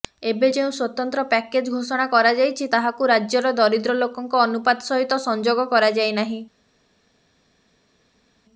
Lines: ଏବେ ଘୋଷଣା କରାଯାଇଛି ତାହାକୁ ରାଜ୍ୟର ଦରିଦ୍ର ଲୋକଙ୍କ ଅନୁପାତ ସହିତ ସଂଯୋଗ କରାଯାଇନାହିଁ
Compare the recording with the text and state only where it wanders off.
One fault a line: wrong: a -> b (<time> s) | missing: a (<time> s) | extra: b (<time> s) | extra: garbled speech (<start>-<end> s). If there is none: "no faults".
extra: ଯେଉଁ ସ୍ୱତନ୍ତ୍ର ପ୍ୟାକେଜ (0.5 s)